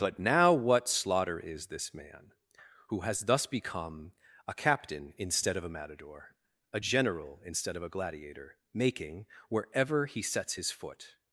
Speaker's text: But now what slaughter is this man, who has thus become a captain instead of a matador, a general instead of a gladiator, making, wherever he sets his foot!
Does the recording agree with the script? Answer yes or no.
yes